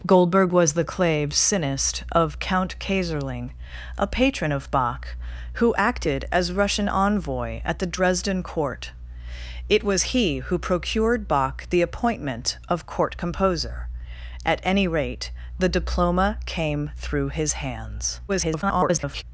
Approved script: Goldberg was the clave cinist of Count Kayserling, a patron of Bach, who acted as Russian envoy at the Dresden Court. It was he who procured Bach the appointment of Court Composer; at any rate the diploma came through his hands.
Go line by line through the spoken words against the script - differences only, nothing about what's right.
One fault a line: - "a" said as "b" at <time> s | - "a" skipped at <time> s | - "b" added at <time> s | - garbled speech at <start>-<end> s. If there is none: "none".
- garbled speech at 18.3-19.2 s